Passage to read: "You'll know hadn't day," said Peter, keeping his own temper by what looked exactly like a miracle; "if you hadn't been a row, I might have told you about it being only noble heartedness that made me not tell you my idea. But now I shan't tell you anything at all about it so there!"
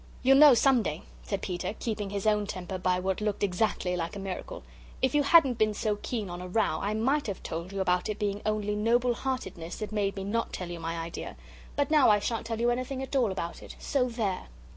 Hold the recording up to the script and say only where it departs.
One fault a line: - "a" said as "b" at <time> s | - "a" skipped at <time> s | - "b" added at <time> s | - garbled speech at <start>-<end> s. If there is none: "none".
- "hadn't" said as "some" at 0.6 s
- "so keen on" added at 5.7 s